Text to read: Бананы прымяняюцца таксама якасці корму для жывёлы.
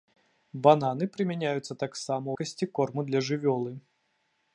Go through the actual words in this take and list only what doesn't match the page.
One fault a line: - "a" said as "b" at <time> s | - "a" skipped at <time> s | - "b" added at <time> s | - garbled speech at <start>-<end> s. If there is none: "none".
none